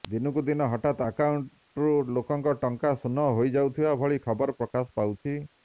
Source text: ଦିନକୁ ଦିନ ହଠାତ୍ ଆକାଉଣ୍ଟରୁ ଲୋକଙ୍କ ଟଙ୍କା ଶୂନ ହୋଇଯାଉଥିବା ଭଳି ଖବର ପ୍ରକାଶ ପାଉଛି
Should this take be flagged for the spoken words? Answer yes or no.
no